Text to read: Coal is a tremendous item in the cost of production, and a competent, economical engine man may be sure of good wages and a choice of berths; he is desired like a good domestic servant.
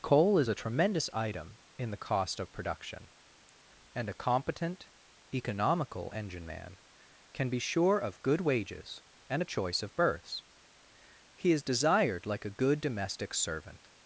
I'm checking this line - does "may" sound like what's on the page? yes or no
no